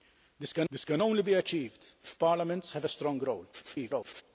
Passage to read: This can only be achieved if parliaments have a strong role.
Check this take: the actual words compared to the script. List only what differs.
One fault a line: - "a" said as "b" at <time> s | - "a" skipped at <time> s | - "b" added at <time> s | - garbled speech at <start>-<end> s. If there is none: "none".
- "this can" added at 0.7 s
- garbled speech at 3.5-4.2 s